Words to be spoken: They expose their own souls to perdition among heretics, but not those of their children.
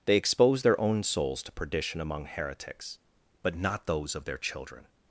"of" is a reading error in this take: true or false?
false